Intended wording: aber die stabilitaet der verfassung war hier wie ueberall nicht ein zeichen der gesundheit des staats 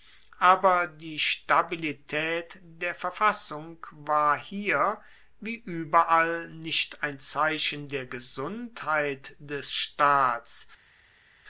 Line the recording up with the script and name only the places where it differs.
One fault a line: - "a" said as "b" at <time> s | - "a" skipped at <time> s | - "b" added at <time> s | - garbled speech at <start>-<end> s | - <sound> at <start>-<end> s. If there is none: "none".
none